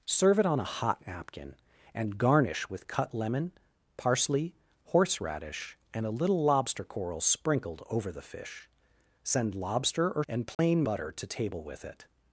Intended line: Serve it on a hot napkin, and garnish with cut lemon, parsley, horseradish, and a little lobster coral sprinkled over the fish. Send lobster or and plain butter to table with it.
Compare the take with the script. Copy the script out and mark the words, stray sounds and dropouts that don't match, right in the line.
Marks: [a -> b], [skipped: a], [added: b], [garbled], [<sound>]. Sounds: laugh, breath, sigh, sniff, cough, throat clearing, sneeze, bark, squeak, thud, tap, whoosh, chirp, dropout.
Serve it on a hot napkin, and garnish with cut lemon, parsley, horseradish, and a little lobster coral sprinkled over the fish. Send lobster or and plain [dropout] butter to table with it.